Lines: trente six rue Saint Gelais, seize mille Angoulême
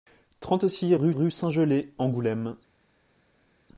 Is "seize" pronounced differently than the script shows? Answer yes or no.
yes